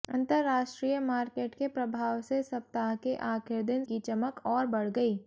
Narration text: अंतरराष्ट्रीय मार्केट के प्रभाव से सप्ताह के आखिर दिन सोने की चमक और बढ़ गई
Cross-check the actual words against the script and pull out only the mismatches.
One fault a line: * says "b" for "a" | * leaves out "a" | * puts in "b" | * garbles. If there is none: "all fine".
* leaves out "सोने"